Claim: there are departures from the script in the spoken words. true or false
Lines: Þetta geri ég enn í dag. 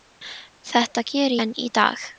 true